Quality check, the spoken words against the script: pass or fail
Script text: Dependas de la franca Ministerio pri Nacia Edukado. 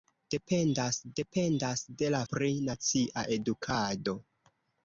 fail